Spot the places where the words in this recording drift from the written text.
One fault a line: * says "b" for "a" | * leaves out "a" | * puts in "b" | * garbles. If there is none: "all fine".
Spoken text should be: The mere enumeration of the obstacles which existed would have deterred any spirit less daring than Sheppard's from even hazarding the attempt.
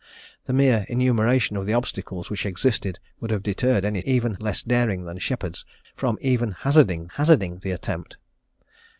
* says "even" for "spirit"
* puts in "hazarding"